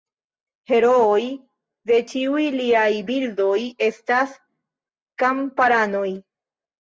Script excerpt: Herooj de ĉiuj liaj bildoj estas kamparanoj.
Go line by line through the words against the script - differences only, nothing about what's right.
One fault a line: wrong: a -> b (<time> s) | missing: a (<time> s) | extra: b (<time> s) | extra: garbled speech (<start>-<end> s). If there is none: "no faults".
no faults